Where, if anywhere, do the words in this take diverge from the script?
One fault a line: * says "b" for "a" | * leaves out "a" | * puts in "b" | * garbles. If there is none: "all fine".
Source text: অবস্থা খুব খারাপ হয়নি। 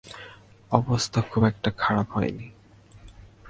* puts in "একটা"